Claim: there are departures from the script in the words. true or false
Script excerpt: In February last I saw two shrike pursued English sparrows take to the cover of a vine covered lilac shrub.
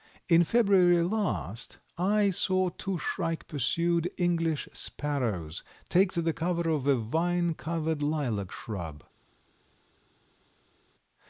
false